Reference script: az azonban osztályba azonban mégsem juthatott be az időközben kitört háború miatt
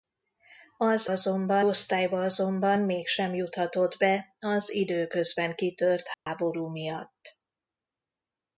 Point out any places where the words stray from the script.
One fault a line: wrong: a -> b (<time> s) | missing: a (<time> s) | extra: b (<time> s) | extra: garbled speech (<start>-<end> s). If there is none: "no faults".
no faults